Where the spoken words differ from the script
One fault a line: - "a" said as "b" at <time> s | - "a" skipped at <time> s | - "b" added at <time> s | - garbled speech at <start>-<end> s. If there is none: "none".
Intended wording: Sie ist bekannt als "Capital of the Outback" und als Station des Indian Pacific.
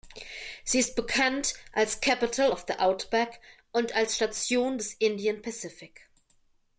none